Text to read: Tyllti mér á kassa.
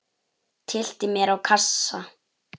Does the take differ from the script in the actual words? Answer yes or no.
no